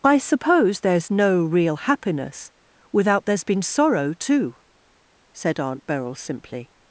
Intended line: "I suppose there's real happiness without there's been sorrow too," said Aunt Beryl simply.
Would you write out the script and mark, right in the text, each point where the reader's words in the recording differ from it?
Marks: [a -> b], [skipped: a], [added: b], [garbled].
"I suppose there's [added: no] real happiness without there's been sorrow too," said Aunt Beryl simply.